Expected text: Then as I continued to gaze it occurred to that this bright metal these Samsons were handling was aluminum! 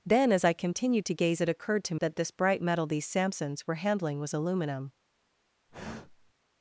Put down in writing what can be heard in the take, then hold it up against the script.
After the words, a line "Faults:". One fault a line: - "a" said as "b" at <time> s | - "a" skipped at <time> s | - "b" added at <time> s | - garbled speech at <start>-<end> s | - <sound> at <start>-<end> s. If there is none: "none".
Then as I continued to gaze it occurred to that this bright metal these Samsons were handling was aluminum!
Faults:
- sigh at 5.7-6.3 s